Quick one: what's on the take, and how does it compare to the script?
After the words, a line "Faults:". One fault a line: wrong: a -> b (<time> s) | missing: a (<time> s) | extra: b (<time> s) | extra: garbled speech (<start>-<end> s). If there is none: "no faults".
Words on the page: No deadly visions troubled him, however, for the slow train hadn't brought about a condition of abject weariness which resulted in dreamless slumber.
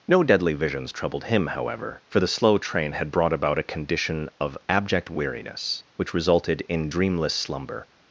No deadly visions troubled him, however, for the slow train had brought about a condition of abject weariness which resulted in dreamless slumber.
Faults:
wrong: hadn't -> had (2.9 s)